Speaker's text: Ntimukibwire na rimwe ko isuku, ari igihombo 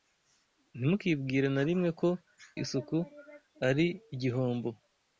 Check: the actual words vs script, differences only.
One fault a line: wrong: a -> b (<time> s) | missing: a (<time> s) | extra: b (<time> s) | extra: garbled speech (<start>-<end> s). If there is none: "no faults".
no faults